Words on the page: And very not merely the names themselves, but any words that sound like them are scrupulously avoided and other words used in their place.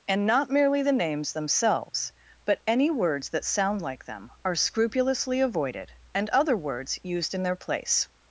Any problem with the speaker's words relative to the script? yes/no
yes